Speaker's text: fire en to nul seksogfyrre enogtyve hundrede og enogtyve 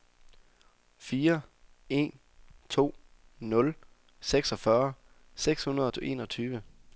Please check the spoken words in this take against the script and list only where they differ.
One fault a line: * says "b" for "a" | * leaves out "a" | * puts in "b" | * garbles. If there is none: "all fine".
* says "seks" for "enogtyve"